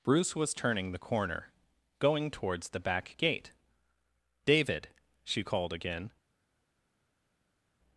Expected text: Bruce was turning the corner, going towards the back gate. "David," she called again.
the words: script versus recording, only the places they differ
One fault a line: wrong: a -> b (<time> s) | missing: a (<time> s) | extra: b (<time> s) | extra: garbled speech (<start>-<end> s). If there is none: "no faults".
no faults